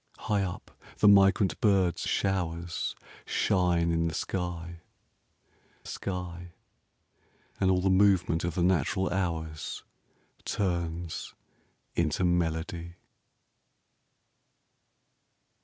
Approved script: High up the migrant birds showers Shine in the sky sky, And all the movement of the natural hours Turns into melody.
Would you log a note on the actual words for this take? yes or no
no